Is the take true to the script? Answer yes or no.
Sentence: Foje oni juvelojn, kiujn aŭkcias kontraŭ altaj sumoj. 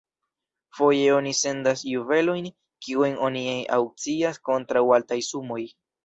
no